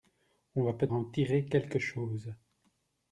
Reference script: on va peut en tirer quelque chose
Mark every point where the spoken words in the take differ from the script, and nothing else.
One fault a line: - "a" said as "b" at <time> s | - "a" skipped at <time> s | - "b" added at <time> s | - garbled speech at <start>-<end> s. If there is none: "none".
none